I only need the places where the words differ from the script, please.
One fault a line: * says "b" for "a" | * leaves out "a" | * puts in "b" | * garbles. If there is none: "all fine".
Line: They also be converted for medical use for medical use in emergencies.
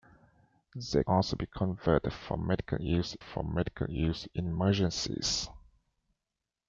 all fine